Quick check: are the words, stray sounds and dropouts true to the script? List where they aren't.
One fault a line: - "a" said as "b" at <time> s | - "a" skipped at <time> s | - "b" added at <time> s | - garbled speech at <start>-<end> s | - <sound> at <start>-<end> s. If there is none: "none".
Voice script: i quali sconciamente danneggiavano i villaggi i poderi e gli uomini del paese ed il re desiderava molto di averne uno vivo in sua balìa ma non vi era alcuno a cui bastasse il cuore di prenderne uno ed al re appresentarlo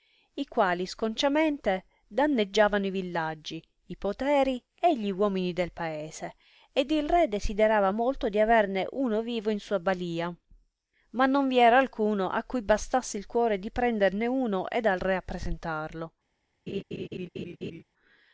- laugh at 16.7-17.8 s